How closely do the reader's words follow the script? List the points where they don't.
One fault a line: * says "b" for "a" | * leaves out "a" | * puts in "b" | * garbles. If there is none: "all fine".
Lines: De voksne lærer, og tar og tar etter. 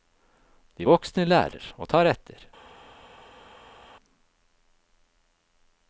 * leaves out "og tar"